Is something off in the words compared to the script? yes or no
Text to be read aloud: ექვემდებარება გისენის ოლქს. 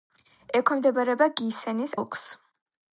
no